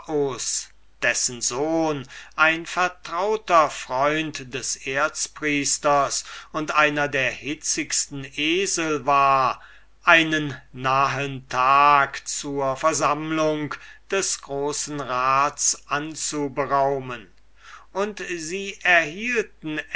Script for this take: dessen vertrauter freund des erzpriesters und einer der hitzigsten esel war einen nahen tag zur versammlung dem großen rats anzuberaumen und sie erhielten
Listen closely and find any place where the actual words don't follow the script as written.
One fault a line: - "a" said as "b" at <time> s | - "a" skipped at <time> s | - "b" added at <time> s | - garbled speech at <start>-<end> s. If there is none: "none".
- "sohn ein" added at 1.4 s
- "dem" said as "des" at 14.1 s